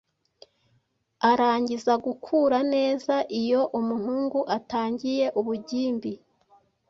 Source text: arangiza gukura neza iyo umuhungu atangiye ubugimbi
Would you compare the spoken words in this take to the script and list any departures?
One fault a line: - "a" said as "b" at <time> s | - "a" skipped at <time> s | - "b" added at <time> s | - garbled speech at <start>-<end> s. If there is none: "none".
none